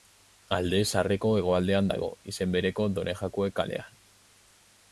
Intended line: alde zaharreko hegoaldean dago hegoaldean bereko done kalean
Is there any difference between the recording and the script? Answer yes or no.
yes